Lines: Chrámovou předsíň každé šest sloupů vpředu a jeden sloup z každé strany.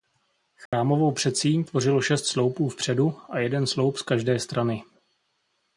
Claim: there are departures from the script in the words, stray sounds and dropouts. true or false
true